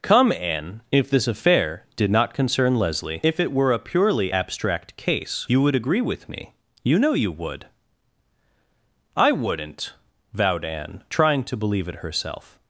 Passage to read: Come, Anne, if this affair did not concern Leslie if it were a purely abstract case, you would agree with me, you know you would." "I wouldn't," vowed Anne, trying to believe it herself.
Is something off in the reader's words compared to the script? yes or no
no